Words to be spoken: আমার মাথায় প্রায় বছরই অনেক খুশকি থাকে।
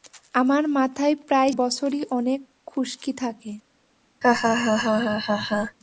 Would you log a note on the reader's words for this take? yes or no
no